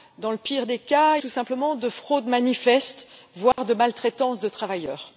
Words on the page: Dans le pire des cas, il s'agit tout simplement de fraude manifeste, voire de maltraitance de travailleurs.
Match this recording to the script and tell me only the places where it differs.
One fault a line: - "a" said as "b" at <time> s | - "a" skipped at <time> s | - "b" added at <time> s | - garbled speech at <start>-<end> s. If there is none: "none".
- "il s'agit" skipped at 1.2 s